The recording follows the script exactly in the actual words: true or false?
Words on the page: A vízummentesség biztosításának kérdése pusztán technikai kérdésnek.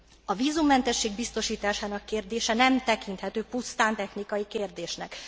false